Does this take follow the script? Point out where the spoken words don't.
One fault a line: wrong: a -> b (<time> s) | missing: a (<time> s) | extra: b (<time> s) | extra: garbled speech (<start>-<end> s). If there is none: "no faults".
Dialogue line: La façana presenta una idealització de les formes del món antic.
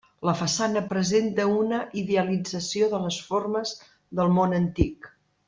no faults